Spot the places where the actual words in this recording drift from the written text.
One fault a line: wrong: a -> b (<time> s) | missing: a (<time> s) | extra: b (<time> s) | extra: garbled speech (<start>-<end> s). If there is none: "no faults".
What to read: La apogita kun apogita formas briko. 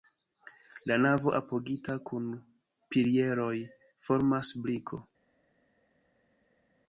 extra: navo (1.0 s)
wrong: apogita -> pilieroj (3.0 s)